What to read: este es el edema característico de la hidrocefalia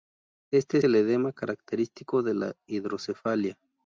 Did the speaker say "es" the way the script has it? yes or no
no